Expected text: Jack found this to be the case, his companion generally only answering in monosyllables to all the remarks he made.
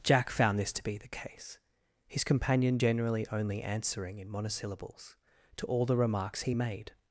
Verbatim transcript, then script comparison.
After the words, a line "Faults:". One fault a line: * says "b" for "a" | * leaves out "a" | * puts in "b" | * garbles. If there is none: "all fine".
Jack found this to be the case, his companion generally only answering in monosyllables to all the remarks he made.
Faults:
all fine